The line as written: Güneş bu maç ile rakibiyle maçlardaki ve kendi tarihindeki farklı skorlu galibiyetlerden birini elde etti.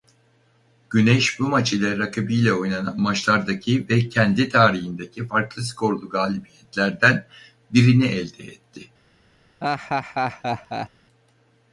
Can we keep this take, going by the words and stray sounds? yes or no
no